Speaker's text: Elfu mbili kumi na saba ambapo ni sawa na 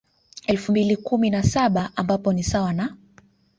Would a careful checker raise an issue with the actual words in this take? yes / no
no